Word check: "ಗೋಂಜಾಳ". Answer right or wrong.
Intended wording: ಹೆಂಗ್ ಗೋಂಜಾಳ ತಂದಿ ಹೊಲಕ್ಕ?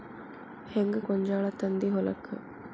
right